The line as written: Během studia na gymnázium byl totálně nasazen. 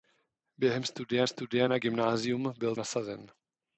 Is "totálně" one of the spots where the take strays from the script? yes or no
yes